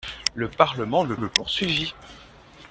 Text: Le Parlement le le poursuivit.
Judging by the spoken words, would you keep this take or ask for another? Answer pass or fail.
pass